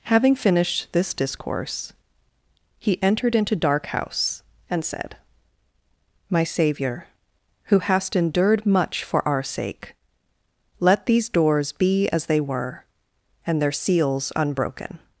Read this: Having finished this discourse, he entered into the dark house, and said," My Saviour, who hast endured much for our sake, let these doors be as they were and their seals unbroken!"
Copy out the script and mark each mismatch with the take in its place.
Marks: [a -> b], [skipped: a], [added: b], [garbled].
Having finished this discourse, he entered into [skipped: the] dark house, and said," My Saviour, who hast endured much for our sake, let these doors be as they were and their seals unbroken!"